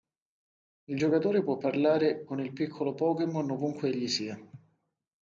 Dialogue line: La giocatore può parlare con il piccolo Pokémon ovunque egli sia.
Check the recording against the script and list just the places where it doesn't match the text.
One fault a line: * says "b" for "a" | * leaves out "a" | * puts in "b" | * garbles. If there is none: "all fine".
* says "Il" for "La"